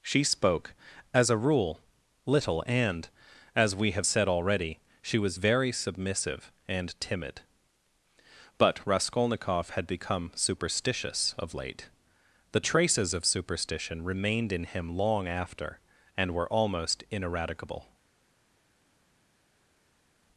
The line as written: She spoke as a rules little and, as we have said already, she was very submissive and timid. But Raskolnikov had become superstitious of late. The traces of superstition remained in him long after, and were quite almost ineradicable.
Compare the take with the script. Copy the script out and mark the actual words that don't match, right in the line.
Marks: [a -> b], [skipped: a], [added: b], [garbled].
She spoke as a [rules -> rule] little and, as we have said already, she was very submissive and timid. But Raskolnikov had become superstitious of late. The traces of superstition remained in him long after, and were [skipped: quite] almost ineradicable.